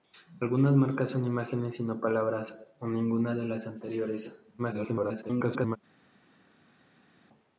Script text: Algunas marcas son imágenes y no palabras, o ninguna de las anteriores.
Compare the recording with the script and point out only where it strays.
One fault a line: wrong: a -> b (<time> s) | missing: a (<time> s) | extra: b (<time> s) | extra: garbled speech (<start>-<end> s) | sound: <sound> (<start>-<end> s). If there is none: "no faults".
extra: garbled speech (4.6-5.8 s)